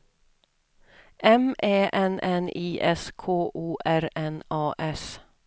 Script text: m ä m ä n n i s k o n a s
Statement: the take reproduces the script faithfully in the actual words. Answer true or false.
false